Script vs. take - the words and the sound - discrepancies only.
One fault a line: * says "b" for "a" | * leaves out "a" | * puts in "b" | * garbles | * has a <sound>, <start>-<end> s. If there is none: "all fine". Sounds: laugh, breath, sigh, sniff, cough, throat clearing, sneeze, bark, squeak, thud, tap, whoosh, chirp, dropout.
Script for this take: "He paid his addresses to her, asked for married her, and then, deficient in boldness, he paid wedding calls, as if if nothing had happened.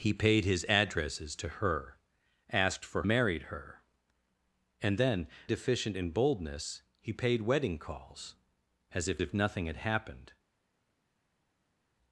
all fine